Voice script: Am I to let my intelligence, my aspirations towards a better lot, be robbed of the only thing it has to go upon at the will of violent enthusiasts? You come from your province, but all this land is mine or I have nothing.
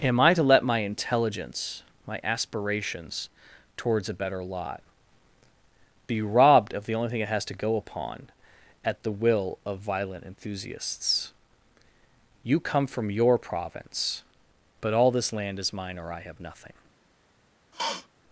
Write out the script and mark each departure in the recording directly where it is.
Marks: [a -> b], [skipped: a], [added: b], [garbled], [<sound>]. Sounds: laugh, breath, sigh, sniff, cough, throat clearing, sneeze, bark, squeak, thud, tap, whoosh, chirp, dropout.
Am I to let my intelligence, my aspirations towards a better lot, be robbed of the only thing it has to go upon at the will of violent enthusiasts? You come from your province, but all this land is mine or I have nothing. [sniff]